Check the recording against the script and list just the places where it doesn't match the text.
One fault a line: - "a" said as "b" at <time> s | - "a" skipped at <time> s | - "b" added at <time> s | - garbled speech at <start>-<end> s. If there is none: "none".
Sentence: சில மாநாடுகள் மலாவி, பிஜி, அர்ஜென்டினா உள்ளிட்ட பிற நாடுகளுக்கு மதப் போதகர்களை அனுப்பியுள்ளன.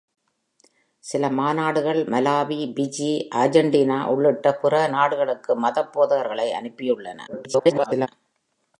- garbled speech at 7.3-8.1 s